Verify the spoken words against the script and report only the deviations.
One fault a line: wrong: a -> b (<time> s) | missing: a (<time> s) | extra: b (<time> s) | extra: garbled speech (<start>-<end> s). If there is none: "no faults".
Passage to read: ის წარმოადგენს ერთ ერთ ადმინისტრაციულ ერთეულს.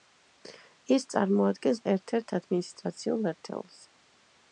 no faults